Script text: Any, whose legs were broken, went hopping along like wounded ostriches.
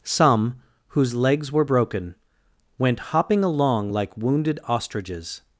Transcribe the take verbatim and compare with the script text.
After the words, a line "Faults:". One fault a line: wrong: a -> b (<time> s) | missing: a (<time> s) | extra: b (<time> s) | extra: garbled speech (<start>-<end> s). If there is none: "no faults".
Some, whose legs were broken, went hopping along like wounded ostriches.
Faults:
wrong: Any -> Some (0.0 s)